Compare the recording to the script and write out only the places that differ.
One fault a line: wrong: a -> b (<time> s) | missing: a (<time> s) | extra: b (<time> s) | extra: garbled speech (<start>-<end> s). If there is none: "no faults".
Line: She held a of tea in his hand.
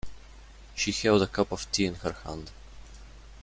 extra: cup (1.3 s)
wrong: his -> her (1.9 s)